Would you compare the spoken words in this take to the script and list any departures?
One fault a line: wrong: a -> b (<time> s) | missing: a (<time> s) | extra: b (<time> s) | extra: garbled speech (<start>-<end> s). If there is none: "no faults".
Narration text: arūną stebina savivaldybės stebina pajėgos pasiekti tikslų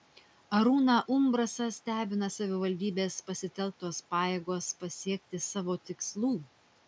extra: umbrasą (1.1 s)
wrong: stebina -> pasitelktos (3.3 s)
extra: savo (5.5 s)